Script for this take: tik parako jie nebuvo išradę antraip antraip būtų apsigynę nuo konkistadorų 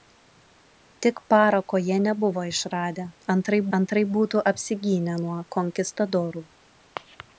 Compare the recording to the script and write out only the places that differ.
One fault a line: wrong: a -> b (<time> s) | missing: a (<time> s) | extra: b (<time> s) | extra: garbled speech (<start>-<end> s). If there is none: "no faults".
no faults